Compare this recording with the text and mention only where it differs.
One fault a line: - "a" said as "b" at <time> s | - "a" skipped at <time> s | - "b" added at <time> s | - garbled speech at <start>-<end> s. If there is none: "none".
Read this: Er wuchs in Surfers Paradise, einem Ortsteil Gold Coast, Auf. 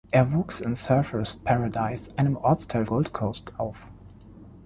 none